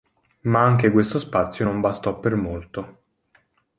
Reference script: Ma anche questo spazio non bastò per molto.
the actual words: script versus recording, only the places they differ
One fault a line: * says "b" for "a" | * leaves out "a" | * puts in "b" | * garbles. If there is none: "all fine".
all fine